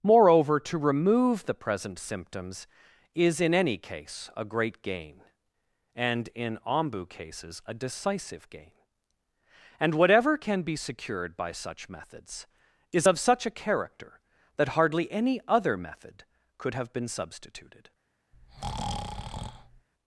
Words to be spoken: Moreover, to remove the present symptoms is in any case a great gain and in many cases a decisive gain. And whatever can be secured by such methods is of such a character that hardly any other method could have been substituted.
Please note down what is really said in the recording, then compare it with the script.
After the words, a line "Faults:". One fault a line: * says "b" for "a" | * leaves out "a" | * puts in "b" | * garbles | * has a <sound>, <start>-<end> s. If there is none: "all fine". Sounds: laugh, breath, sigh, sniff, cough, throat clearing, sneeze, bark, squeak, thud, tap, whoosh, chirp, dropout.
Moreover, to remove the present symptoms is in any case a great gain and in ombu cases a decisive gain. And whatever can be secured by such methods is of such a character that hardly any other method could have been substituted.
Faults:
* says "ombu" for "many"
* has a breath, 18.3-19.9 s